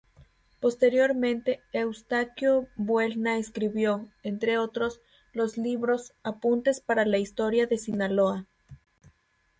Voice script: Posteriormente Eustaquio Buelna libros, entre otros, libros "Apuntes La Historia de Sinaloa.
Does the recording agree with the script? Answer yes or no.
no